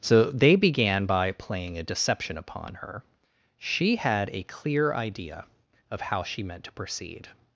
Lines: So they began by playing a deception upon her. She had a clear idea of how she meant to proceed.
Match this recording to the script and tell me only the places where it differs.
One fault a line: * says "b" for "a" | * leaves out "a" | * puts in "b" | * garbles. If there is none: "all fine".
all fine